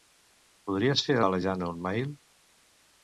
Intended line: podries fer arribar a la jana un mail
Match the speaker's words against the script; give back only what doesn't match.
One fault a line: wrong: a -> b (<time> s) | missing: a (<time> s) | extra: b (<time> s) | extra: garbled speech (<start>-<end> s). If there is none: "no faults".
missing: arribar (1.2 s)